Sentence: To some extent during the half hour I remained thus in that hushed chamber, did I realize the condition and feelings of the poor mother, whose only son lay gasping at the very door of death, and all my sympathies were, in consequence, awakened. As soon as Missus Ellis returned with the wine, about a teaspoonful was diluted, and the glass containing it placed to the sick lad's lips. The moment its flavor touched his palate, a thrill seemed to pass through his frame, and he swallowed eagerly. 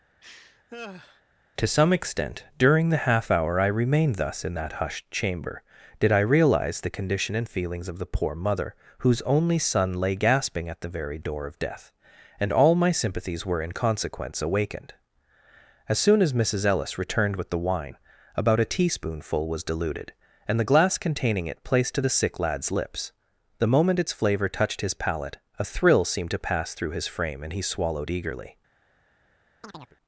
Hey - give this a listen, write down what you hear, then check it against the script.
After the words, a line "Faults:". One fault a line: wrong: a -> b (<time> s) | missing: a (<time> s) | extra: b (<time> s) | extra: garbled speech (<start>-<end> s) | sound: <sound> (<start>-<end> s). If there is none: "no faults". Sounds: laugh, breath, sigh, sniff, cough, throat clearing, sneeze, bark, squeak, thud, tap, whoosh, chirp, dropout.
To some extent during the half hour I remained thus in that hushed chamber, did I realize the condition and feelings of the poor mother, whose only son lay gasping at the very door of death, and all my sympathies were, in consequence, awakened. As soon as Missus Ellis returned with the wine, about a teaspoonful was diluted, and the glass containing it placed to the sick lad's lips. The moment its flavor touched his palate, a thrill seemed to pass through his frame, and he swallowed eagerly.
Faults:
sound: laugh (0.2-1.2 s)
sound: chirp (29.6-30.0 s)